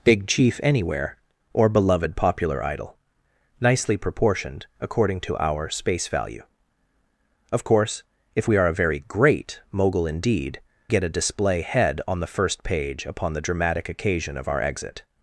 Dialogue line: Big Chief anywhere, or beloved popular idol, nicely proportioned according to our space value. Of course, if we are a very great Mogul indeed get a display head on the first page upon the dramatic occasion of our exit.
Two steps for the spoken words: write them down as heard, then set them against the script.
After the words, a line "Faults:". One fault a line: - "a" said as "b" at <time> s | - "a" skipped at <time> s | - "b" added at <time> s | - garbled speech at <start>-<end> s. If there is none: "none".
Big Chief anywhere, or beloved popular idol, nicely proportioned according to our space value. Of course, if we are a very great Mogul indeed get a display head on the first page upon the dramatic occasion of our exit.
Faults:
none